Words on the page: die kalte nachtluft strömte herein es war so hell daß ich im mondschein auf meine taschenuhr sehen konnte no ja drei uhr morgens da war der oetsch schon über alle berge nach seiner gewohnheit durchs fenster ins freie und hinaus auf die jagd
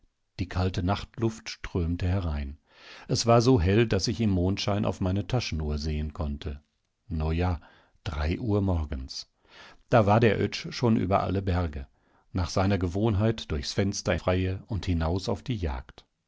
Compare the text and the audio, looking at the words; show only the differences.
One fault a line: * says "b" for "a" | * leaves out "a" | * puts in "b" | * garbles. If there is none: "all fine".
* leaves out "ins"